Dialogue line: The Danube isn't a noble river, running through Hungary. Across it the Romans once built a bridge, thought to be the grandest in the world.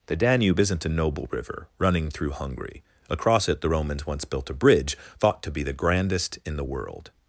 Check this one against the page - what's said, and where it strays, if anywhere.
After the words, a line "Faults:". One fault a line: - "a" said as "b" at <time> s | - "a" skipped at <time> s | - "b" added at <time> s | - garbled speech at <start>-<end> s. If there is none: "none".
The Danube isn't a noble river, running through Hungary. Across it the Romans once built a bridge, thought to be the grandest in the world.
Faults:
none